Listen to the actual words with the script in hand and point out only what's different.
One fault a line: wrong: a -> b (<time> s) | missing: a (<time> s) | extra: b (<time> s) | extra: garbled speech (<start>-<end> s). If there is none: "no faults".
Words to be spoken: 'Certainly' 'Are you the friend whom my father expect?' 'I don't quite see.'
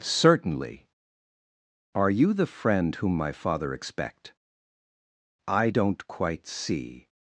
no faults